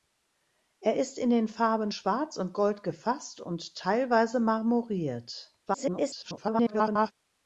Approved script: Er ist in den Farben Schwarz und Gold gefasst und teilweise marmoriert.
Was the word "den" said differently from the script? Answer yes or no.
no